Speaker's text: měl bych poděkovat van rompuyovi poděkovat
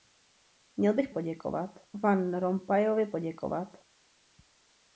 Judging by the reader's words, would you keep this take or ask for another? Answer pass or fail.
pass